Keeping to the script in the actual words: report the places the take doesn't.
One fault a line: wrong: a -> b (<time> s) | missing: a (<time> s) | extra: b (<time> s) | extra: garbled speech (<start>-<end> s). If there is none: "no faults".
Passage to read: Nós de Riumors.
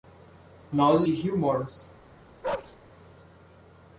no faults